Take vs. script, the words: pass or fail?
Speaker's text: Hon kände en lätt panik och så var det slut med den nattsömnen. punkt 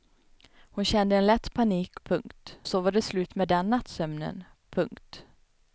fail